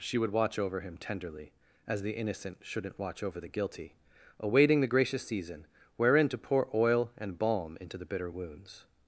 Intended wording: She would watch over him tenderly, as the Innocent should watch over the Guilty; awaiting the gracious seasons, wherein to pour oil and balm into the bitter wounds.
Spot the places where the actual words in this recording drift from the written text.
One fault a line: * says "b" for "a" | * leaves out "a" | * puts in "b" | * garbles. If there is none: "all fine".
* says "shouldn't" for "should"
* says "season" for "seasons"